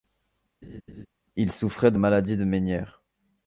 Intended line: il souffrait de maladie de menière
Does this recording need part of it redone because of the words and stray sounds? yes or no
yes